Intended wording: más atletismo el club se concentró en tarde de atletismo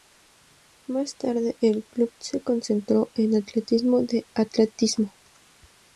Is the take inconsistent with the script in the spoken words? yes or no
yes